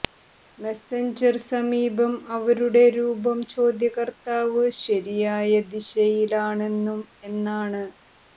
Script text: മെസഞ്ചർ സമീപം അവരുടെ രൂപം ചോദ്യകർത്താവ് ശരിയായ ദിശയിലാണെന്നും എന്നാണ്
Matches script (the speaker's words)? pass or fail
pass